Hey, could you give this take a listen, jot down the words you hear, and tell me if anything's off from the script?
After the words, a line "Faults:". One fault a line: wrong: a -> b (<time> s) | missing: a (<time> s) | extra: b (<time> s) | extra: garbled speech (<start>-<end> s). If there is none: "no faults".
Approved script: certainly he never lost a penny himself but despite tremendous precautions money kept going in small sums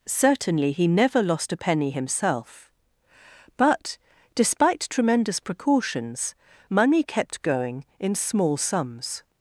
certainly he never lost a penny himself but despite tremendous precautions money kept going in small sums
Faults:
no faults